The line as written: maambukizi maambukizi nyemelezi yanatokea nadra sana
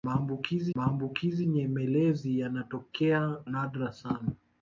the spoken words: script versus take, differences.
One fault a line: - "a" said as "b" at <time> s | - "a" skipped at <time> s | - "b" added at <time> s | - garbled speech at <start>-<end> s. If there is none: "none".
none